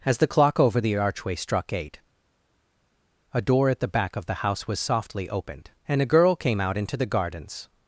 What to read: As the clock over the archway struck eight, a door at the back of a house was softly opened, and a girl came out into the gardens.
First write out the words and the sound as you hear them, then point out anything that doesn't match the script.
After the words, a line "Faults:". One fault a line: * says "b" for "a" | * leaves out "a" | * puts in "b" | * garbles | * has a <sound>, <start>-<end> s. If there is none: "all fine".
As the clock over the archway struck eight, a door at the back of the house was softly opened, and a girl came out into the gardens.
Faults:
* says "the" for "a"